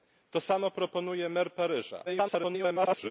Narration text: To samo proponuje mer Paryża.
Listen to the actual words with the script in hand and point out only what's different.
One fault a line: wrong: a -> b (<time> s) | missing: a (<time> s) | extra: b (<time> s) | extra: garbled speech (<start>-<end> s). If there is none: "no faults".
extra: garbled speech (2.1-3.1 s)